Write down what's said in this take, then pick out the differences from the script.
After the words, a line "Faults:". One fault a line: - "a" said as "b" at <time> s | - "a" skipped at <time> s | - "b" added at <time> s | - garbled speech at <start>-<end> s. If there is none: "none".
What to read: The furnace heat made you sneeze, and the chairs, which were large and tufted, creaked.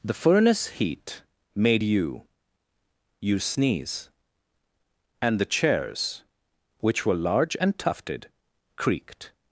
The furnace heat made you you sneeze, and the chairs, which were large and tufted, creaked.
Faults:
- "you" added at 3.2 s